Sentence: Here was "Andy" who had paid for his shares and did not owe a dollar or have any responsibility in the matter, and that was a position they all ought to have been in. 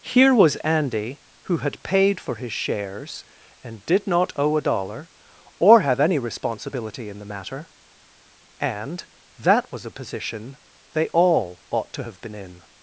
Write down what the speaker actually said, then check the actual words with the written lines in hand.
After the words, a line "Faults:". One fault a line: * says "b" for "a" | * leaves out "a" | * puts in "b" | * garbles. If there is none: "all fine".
Here was "Andy" who had paid for his shares and did not owe a dollar or have any responsibility in the matter, and that was a position they all ought to have been in.
Faults:
all fine